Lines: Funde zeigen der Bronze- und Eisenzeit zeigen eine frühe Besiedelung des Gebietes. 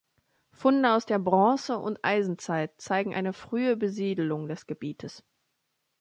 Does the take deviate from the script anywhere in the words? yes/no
yes